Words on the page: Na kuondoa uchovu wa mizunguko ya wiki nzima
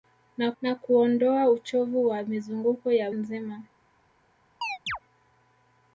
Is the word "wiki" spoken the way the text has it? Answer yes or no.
no